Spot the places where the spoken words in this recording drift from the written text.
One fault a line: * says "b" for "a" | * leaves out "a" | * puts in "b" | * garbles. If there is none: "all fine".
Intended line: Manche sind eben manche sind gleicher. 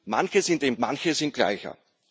all fine